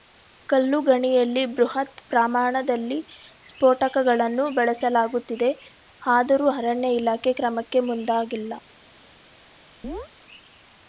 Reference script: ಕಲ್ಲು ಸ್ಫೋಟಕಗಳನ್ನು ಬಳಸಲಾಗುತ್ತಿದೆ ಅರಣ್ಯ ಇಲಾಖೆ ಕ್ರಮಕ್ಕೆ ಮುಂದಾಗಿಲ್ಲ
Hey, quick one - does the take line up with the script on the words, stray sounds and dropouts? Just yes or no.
no